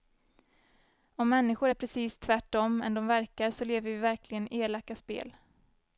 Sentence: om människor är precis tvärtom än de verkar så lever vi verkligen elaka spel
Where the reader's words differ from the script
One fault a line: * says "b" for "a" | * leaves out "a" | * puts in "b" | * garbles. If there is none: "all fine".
all fine